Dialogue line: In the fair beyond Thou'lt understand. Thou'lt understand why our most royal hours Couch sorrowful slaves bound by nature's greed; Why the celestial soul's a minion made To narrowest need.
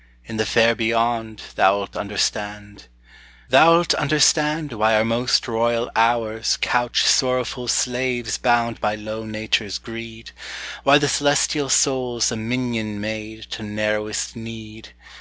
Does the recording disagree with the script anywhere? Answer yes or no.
yes